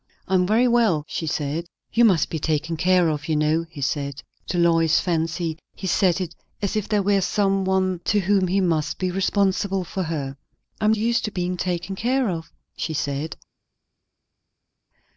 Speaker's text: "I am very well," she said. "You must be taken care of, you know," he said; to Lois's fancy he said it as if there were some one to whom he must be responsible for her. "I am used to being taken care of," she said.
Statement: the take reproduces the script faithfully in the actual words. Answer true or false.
true